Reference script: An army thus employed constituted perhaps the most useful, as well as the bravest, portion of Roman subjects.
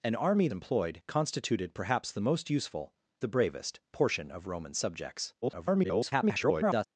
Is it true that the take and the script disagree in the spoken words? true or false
true